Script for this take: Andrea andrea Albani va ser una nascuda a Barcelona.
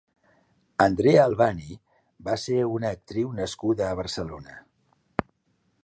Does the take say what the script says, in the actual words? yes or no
no